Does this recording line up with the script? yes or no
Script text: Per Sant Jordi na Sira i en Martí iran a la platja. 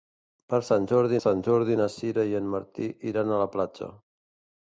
no